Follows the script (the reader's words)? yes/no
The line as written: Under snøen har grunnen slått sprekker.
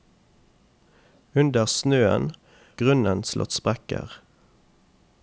no